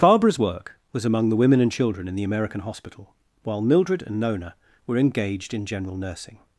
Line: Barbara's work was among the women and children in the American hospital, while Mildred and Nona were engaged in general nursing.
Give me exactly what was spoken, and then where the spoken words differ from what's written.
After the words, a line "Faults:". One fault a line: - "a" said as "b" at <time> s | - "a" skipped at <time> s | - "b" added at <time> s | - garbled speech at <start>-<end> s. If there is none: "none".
Barbara's work was among the women and children in the American hospital, while Mildred and Nona were engaged in general nursing.
Faults:
none